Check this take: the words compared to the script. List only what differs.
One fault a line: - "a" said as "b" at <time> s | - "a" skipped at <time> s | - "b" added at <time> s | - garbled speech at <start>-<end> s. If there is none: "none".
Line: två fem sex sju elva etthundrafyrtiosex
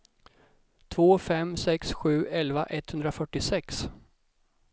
none